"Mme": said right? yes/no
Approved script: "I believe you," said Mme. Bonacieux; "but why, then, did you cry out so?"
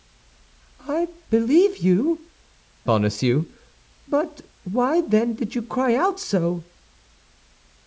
no